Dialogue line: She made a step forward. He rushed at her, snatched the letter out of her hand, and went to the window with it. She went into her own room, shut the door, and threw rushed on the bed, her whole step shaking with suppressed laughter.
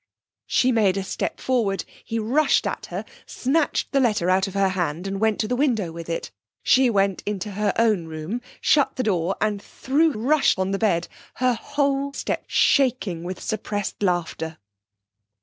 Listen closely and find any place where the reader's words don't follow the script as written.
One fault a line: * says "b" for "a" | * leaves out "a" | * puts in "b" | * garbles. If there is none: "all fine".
all fine